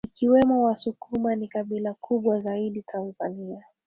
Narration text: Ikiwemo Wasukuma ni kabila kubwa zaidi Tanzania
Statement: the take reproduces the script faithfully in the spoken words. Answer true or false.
true